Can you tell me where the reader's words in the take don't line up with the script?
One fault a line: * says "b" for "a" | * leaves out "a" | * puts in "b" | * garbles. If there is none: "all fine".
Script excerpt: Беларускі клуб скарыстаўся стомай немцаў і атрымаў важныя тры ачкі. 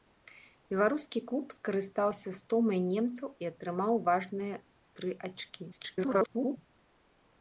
* garbles